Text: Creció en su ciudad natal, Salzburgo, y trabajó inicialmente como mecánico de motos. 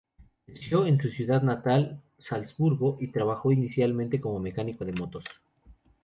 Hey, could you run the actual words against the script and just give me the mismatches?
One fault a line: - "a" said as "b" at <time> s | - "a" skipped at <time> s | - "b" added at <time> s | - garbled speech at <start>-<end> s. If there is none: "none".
none